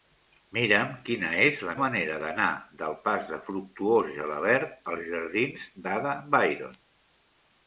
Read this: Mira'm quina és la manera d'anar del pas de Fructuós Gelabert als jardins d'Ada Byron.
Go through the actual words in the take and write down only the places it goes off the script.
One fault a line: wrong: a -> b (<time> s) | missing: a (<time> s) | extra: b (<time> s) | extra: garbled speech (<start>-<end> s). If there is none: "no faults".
no faults